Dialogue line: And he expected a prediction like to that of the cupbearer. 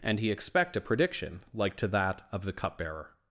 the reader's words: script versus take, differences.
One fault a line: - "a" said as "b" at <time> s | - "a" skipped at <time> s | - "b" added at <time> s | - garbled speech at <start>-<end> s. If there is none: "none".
- "expected" said as "expect" at 0.3 s